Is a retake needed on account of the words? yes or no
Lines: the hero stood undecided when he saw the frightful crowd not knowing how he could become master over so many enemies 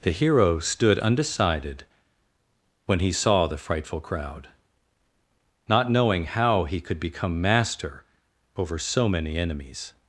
no